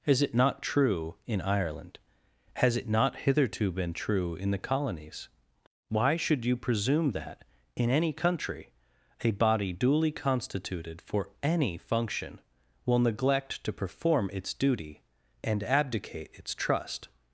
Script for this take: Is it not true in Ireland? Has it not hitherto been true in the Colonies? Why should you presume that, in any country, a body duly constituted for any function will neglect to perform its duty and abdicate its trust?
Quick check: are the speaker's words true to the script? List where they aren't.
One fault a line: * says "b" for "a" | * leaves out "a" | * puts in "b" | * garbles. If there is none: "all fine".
all fine